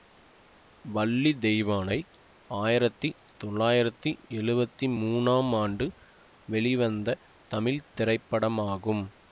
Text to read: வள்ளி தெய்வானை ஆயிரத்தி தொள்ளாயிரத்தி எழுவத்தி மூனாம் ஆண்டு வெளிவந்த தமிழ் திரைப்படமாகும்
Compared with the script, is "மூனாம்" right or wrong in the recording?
right